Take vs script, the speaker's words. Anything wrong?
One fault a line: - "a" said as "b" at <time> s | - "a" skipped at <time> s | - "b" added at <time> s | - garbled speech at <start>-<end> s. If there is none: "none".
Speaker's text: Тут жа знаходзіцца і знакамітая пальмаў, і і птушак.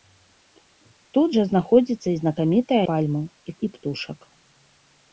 none